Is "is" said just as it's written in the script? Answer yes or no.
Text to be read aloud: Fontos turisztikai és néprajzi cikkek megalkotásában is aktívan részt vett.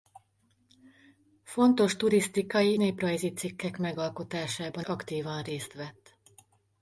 no